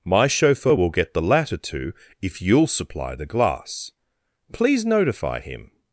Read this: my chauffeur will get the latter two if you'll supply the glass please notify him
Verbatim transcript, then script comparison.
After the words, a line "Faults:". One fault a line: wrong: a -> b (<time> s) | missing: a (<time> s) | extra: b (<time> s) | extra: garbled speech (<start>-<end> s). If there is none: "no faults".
my chauffeur will get the latter two if you'll supply the glass please notify him
Faults:
no faults